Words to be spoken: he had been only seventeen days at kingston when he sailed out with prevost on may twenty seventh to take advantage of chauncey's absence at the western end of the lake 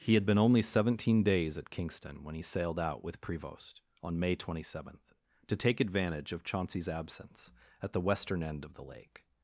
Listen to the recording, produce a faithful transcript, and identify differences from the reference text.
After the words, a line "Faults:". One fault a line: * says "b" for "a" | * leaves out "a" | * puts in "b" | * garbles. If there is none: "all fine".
he had been only seventeen days at kingston when he sailed out with prevost on may twenty seventh to take advantage of chauncey's absence at the western end of the lake
Faults:
all fine